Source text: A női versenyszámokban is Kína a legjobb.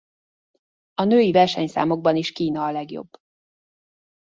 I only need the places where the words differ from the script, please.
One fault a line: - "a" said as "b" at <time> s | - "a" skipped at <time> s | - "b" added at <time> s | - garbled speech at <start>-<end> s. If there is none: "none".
none